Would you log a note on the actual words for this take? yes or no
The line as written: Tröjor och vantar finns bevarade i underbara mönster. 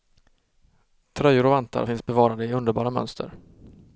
no